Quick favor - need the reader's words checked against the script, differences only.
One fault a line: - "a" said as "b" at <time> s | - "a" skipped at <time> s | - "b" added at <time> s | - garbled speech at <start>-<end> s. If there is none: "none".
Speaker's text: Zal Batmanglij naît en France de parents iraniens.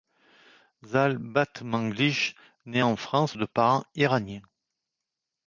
none